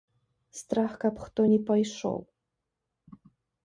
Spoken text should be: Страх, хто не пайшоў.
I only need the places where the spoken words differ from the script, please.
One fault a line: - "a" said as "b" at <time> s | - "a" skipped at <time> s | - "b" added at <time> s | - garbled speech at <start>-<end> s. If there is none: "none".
- "каб" added at 1.0 s